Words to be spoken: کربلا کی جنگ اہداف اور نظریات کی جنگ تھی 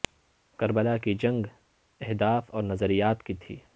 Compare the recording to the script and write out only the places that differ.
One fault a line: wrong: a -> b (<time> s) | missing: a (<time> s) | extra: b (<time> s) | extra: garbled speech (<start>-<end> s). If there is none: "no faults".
missing: جنگ (3.3 s)